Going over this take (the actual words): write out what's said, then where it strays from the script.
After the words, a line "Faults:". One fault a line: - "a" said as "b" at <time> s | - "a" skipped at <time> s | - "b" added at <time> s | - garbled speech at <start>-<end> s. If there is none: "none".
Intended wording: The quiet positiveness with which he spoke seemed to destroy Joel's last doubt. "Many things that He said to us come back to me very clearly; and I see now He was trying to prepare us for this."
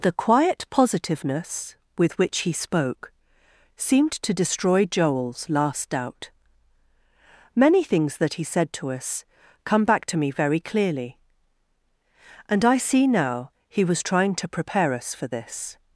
The quiet positiveness with which he spoke seemed to destroy Joel's last doubt. "Many things that He said to us come back to me very clearly; and I see now He was trying to prepare us for this."
Faults:
none